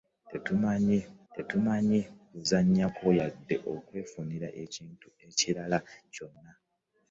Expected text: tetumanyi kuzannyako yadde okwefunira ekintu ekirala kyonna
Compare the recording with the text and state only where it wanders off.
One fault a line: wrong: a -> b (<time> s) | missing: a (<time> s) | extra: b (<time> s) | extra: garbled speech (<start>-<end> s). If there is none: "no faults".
extra: tetumanyi (1.3 s)